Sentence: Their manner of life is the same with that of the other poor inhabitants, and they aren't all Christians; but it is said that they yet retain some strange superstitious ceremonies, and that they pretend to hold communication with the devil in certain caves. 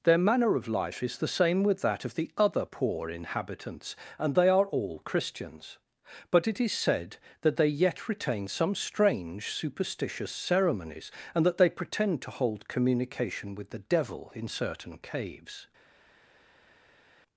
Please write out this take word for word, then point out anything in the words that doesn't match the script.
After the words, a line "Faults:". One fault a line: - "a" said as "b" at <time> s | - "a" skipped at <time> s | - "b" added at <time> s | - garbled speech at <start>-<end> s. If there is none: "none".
Their manner of life is the same with that of the other poor inhabitants, and they are all Christians; but it is said that they yet retain some strange superstitious ceremonies, and that they pretend to hold communication with the devil in certain caves.
Faults:
- "aren't" said as "are" at 4.5 s